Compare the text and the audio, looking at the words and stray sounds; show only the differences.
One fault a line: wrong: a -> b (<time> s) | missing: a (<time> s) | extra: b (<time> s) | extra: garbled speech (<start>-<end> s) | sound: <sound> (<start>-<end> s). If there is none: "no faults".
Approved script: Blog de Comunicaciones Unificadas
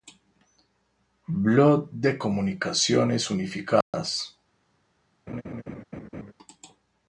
sound: dropout (3.8-3.9 s)
sound: laugh (5.3-6.3 s)